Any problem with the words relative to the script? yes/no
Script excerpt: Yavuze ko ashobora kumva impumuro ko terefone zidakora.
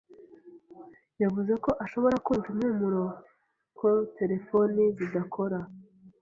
no